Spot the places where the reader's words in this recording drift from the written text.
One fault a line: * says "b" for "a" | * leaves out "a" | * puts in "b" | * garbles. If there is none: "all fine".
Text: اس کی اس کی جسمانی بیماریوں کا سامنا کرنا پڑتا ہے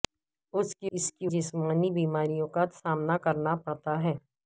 all fine